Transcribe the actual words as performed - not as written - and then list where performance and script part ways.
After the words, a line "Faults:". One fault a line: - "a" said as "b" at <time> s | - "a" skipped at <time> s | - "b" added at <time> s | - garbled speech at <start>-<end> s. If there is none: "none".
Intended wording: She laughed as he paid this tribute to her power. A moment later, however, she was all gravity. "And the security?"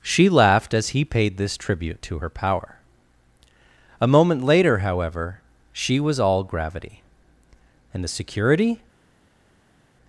She laughed as he paid this tribute to her power. A moment later, however, she was all gravity. "And the security?"
Faults:
none